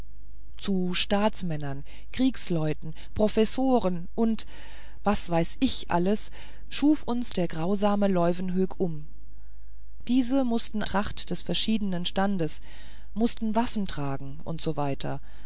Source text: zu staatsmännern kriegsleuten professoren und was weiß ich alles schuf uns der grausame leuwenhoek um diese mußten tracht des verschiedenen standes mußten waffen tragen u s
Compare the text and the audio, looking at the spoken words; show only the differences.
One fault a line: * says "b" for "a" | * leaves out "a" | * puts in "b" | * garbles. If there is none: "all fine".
all fine